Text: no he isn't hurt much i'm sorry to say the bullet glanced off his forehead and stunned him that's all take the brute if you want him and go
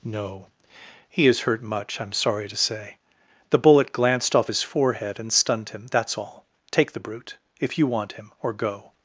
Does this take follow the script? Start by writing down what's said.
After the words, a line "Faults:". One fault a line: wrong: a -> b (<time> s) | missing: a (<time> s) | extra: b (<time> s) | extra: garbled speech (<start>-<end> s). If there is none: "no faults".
no he is hurt much i'm sorry to say the bullet glanced off his forehead and stunned him that's all take the brute if you want him or go
Faults:
wrong: isn't -> is (1.3 s)
wrong: and -> or (8.4 s)